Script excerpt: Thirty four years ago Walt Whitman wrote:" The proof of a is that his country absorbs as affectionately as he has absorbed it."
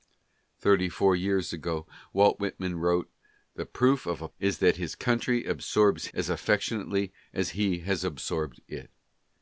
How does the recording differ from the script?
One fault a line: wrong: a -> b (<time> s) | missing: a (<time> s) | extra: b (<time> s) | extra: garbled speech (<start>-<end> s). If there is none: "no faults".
no faults